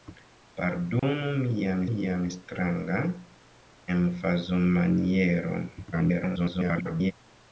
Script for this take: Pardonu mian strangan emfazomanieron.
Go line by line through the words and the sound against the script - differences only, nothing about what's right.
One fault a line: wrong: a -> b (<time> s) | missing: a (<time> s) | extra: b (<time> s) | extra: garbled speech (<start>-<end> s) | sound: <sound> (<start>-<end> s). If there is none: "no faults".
sound: dropout (1.0-1.0 s)
extra: mian (1.9 s)
extra: garbled speech (5.9-7.1 s)